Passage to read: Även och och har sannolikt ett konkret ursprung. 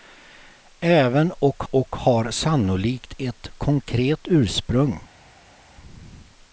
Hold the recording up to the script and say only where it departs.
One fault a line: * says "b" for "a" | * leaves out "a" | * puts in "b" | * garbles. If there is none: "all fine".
all fine